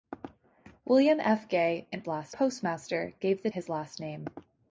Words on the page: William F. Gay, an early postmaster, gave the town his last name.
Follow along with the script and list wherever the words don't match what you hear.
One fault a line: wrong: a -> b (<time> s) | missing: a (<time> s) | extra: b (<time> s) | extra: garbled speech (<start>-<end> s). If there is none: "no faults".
wrong: early -> last (2.1 s)
missing: town (3.5 s)